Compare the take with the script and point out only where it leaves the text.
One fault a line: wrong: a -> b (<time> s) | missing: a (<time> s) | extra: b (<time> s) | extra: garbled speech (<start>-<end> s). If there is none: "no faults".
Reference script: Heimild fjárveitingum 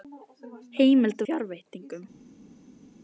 no faults